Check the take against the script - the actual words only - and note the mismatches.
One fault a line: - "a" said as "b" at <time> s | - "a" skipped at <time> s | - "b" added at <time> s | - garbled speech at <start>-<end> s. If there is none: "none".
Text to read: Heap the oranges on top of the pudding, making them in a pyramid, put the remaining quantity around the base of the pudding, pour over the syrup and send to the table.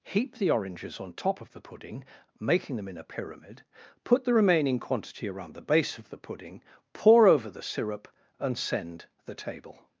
- "to" skipped at 9.1 s